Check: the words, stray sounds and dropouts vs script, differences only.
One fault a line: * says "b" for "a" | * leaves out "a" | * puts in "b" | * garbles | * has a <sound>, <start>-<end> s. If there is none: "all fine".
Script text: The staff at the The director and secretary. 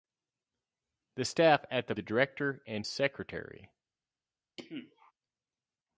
* has a cough, 4.6-5.1 s